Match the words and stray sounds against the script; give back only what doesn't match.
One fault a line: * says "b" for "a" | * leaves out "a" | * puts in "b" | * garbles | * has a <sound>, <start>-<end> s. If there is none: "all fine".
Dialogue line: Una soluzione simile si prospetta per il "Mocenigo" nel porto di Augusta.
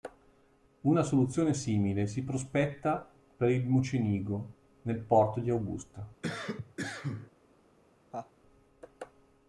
* has a cough, 6.2-7.3 s
* has a laugh, 8.1-8.3 s